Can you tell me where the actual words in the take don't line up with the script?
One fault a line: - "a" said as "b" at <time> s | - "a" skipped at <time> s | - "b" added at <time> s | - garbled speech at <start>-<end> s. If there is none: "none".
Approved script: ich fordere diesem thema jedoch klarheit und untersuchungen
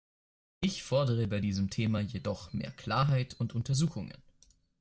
- "bei" added at 1.3 s
- "mehr" added at 2.5 s